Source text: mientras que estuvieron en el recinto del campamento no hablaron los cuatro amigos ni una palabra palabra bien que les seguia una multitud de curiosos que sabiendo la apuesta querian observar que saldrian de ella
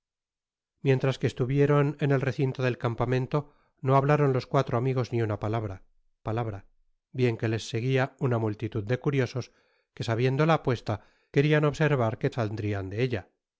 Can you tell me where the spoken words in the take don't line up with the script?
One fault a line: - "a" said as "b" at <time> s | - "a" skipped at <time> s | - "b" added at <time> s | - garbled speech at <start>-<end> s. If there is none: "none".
none